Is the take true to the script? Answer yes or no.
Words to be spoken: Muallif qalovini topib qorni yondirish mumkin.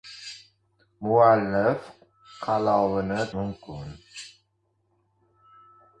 no